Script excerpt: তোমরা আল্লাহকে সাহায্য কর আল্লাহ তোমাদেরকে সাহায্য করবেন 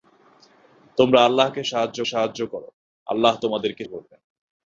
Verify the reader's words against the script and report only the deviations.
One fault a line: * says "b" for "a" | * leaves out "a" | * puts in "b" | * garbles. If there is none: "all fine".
* puts in "সাহায্য"
* leaves out "সাহায্য"